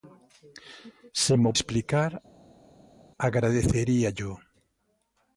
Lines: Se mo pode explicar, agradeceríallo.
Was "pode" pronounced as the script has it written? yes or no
no